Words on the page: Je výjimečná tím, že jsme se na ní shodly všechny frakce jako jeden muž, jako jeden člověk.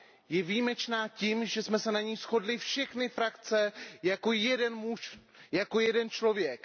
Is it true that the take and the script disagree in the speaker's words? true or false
false